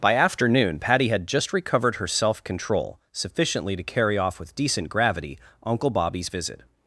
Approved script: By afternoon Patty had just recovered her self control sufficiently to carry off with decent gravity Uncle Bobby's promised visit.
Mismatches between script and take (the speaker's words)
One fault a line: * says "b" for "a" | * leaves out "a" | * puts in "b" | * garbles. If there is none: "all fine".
* leaves out "promised"